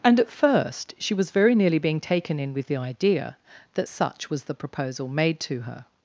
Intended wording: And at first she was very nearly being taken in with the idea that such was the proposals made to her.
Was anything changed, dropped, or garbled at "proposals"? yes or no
yes